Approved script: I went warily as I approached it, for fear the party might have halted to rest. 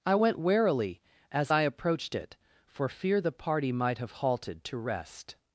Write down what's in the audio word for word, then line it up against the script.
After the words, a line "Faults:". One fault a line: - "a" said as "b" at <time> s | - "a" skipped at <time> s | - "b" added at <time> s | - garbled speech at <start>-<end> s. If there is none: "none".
I went warily as I approached it, for fear the party might have halted to rest.
Faults:
none